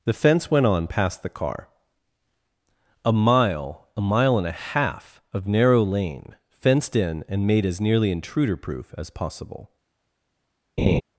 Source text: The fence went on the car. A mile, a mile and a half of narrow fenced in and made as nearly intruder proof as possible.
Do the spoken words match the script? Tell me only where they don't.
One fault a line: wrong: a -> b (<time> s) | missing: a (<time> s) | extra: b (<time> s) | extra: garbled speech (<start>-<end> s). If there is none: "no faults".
extra: past (0.9 s)
extra: lane (5.8 s)